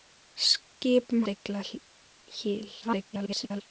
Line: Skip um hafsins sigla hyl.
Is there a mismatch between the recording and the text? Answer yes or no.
yes